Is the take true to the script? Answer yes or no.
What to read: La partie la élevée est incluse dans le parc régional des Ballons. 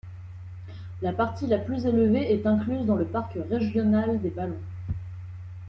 no